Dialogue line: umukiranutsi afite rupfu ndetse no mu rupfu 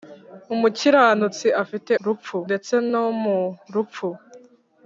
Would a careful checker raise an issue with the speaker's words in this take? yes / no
no